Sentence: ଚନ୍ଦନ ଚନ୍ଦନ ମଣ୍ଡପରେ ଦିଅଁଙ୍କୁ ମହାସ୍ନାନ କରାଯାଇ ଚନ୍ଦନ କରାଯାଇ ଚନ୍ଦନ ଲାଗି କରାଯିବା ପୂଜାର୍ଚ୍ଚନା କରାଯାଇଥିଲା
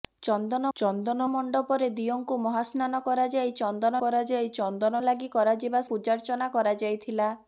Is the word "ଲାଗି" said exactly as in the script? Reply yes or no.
yes